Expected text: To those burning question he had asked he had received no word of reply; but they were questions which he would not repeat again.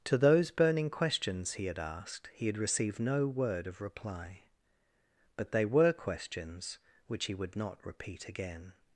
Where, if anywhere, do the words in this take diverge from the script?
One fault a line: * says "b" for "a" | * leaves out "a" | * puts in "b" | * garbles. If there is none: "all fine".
* says "questions" for "question"